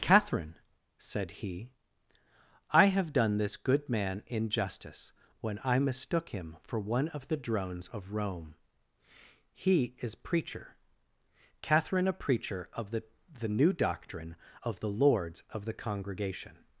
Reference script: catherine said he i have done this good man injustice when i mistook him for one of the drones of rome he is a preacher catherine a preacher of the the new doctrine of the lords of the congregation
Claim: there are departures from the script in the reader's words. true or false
true